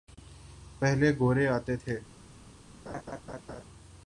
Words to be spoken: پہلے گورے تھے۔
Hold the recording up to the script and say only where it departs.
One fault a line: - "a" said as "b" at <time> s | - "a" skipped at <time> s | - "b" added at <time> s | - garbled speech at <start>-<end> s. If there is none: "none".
- "آتے" added at 1.5 s